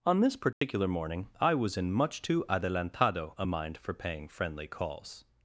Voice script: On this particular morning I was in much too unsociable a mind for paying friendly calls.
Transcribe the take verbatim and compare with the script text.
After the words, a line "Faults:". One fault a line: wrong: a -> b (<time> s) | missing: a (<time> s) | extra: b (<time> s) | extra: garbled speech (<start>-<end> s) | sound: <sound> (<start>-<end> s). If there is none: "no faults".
On this particular morning I was in much too adelantado a mind for paying friendly calls.
Faults:
sound: dropout (0.5-0.6 s)
wrong: unsociable -> adelantado (2.5 s)